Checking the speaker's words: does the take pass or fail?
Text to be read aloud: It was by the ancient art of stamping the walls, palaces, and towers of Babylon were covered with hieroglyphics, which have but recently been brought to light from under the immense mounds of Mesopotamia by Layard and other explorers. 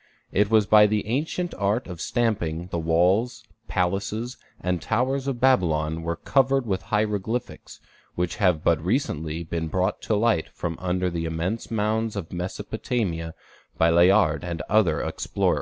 pass